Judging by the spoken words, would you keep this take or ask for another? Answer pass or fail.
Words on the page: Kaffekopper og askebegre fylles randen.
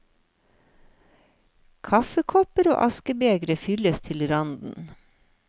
fail